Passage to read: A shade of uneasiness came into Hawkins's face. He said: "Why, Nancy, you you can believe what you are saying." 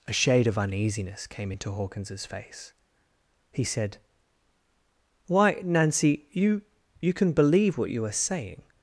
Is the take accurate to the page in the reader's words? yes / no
yes